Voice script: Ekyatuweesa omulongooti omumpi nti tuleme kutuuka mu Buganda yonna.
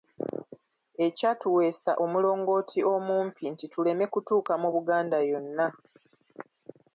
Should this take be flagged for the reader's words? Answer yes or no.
no